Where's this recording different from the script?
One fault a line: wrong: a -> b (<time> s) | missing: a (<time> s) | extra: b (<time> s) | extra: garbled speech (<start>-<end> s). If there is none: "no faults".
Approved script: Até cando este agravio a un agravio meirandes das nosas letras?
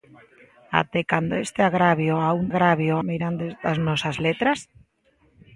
no faults